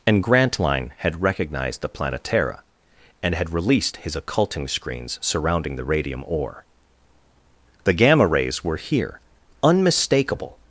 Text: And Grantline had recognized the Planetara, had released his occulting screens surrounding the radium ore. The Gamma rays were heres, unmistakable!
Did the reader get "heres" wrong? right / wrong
wrong